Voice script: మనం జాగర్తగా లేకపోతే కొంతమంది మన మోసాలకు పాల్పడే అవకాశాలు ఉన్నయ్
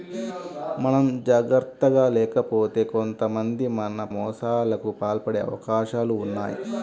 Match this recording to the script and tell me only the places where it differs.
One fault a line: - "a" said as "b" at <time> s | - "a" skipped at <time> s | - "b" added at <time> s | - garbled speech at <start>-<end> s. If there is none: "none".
none